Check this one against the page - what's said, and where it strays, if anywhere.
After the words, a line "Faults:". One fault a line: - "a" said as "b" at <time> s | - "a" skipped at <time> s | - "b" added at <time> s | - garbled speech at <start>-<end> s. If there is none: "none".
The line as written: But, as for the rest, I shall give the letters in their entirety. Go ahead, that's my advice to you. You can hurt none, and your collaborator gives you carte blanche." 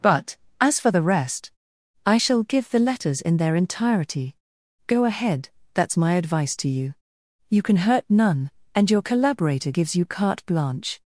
But, as for the rest, I shall give the letters in their entirety. Go ahead, that's my advice to you. You can hurt none, and your collaborator gives you carte blanche."
Faults:
none